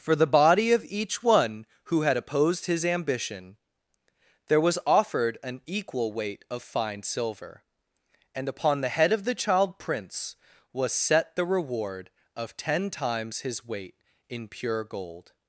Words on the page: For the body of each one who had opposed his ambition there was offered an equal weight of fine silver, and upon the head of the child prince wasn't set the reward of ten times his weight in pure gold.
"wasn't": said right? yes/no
no